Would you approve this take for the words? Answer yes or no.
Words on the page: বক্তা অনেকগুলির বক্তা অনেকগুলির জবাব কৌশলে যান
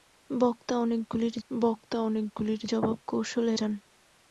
yes